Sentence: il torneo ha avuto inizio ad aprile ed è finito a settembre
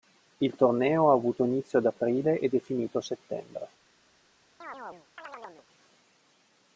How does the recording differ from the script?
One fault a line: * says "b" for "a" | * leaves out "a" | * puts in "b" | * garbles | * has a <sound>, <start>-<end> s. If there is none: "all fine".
* has a chirp, 4.6-5.7 s